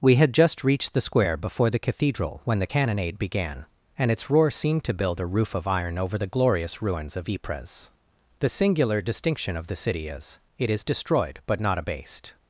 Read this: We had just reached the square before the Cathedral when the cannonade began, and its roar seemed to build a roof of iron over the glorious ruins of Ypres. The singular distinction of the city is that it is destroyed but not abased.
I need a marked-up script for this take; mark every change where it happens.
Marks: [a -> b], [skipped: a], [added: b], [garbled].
We had just reached the square before the Cathedral when the cannonade began, and its roar seemed to build a roof of iron over the glorious ruins of Ypres. The singular distinction of the city is [skipped: that] it is destroyed but not abased.